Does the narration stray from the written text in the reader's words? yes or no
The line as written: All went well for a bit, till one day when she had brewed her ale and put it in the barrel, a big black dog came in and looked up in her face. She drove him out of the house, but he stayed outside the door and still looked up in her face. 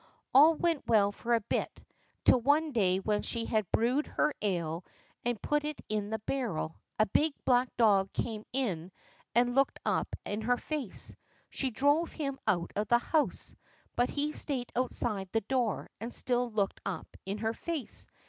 no